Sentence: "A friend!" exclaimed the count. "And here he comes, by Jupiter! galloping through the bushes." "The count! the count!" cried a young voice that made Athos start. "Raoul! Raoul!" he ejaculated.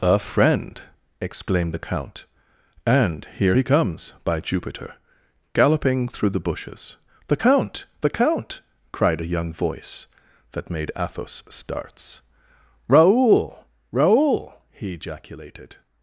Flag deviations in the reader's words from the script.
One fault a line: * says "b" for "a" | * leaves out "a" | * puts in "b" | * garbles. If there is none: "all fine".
* says "starts" for "start"